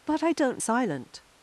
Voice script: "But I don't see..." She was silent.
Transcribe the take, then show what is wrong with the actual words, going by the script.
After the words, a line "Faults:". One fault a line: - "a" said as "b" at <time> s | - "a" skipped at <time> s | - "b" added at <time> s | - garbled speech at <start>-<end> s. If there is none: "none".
"But I don't silent.
Faults:
- "see She was" skipped at 0.6 s